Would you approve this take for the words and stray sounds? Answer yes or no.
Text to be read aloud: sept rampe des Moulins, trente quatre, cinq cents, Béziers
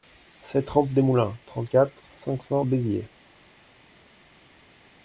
yes